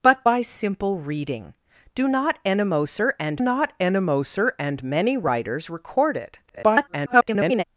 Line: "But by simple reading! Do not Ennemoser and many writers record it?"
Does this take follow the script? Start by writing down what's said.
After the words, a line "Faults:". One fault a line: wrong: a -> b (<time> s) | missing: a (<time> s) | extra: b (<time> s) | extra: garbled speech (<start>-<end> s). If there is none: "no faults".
"But by simple reading! Do not Ennemoser and not Ennemoser and many writers record it?" [garbled]
Faults:
extra: not Ennemoser and (3.4 s)
extra: garbled speech (6.5-7.6 s)